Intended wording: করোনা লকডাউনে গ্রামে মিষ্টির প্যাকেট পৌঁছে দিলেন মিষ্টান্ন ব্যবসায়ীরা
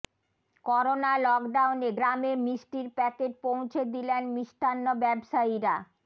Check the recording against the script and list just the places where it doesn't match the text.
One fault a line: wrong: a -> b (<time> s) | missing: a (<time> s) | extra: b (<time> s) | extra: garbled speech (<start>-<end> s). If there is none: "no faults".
no faults